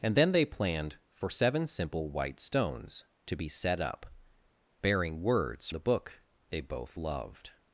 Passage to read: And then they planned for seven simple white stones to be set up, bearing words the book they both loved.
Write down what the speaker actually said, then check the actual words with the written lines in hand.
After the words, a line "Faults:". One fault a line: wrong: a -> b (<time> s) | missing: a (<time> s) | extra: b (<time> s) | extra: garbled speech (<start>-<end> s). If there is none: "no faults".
And then they planned for seven simple white stones to be set up, bearing words the book they both loved.
Faults:
no faults